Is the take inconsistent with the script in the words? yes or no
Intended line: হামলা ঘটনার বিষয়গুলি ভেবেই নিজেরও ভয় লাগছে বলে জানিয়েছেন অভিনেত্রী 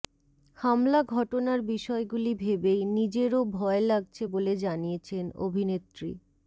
no